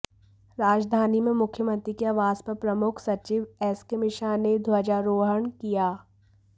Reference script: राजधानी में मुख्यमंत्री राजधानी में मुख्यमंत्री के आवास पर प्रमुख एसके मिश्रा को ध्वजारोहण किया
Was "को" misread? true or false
true